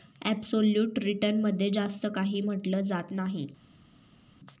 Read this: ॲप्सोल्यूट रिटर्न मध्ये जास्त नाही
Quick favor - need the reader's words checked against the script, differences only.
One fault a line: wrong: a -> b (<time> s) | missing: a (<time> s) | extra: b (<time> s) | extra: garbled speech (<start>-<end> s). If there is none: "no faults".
extra: काही म्हटलं जात (2.1 s)